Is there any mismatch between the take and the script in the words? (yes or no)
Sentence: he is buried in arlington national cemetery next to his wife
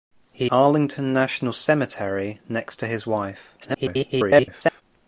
yes